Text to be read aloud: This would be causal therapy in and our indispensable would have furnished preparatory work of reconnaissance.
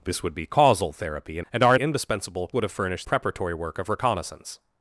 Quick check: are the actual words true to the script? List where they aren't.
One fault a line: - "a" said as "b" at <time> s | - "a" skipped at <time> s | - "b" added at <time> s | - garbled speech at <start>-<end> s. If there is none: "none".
none